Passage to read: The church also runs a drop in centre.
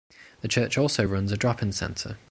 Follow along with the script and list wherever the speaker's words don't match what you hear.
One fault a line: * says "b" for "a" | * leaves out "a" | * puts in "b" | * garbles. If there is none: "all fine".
all fine